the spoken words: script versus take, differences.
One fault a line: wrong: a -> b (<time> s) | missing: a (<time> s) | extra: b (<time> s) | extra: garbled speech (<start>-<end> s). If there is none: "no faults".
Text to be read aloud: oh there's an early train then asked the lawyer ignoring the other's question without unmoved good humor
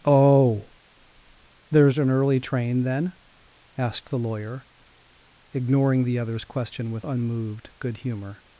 wrong: without -> with (6.9 s)